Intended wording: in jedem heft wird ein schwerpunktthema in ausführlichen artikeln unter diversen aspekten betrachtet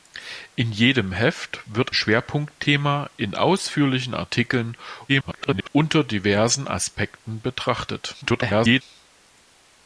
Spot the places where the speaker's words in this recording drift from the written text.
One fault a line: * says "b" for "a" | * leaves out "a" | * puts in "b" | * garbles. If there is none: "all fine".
* leaves out "ein"
* garbles
* garbles